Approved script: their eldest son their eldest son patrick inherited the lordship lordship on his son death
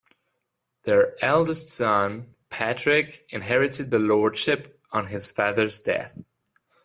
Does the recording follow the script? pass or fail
fail